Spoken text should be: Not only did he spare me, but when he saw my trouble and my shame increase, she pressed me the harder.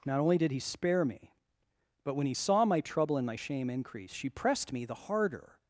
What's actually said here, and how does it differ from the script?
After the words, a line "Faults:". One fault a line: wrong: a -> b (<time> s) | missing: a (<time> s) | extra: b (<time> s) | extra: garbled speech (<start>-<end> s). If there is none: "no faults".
Not only did he spare me, but when he saw my trouble and my shame increase, she pressed me the harder.
Faults:
no faults